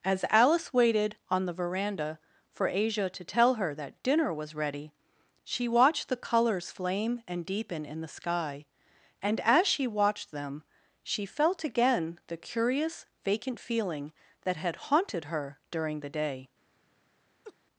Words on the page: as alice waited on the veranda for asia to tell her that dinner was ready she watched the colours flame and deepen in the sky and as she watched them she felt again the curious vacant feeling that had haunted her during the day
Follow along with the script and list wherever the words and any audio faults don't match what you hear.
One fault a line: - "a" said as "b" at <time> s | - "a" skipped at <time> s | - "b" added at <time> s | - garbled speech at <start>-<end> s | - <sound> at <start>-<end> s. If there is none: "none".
- laugh at 17.4-17.6 s